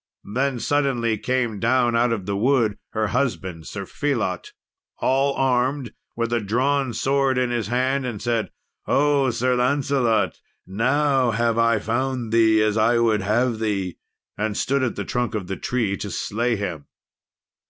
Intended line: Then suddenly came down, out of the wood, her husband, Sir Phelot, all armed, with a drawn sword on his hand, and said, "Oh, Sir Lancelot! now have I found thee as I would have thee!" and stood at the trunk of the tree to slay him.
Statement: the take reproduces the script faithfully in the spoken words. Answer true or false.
false